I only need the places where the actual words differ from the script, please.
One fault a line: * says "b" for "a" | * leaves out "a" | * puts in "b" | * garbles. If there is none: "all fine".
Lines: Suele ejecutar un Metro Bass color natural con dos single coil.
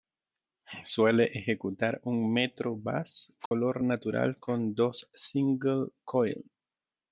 all fine